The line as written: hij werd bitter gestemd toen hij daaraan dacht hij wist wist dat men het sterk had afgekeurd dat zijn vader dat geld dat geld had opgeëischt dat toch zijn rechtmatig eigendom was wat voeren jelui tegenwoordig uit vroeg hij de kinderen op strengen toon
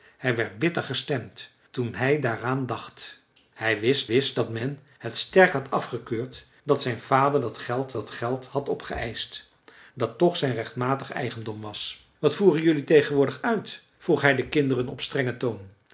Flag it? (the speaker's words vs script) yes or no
no